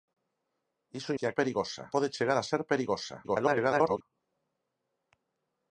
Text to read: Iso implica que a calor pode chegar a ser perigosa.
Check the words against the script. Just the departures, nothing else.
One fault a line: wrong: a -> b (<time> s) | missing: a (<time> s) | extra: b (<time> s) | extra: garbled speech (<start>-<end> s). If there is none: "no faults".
missing: implica (1.1 s)
wrong: calor -> perigosa (1.4 s)
extra: garbled speech (3.2-4.0 s)